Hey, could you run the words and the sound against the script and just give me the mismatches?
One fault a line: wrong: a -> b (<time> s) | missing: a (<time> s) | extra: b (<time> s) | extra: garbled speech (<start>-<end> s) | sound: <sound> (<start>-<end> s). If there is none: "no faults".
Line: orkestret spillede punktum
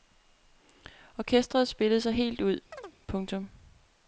extra: sig helt ud (2.0 s)
sound: chirp (2.7-3.0 s)